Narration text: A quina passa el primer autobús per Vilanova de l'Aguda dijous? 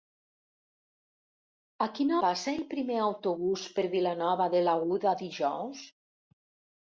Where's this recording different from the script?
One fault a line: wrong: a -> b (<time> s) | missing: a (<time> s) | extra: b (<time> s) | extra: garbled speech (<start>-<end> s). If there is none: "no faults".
no faults